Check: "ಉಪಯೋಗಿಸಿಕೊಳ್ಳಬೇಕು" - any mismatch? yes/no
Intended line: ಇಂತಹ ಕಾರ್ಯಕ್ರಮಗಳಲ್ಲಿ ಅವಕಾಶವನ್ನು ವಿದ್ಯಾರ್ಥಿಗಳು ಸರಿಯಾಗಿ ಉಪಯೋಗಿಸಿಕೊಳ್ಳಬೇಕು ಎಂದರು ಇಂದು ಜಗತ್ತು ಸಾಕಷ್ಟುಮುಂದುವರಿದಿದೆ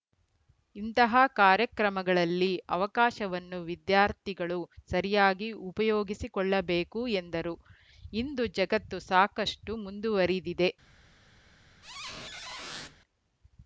no